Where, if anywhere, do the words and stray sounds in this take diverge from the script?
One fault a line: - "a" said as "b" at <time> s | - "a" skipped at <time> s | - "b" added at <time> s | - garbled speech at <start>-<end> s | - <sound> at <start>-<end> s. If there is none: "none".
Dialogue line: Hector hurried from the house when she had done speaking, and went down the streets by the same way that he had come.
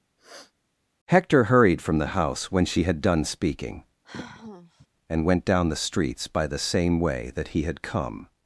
- sniff at 0.2-0.5 s
- sigh at 4.0-4.9 s